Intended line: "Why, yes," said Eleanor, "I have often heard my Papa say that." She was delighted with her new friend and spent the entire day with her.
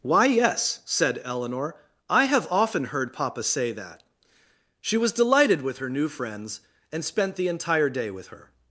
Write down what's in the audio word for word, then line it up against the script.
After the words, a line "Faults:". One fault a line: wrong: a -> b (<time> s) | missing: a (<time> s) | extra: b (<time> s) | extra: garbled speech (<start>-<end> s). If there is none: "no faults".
"Why, yes," said Eleanor, "I have often heard Papa say that." She was delighted with her new friends and spent the entire day with her.
Faults:
missing: my (3.1 s)
wrong: friend -> friends (6.1 s)